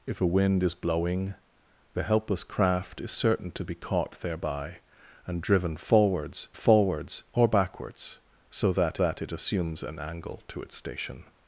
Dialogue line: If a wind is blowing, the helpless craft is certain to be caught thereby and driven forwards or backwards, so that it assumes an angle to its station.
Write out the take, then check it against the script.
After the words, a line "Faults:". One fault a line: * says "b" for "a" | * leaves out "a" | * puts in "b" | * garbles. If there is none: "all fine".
If a wind is blowing, the helpless craft is certain to be caught thereby and driven forwards forwards or backwards, so that that it assumes an angle to its station.
Faults:
* puts in "forwards"
* puts in "that"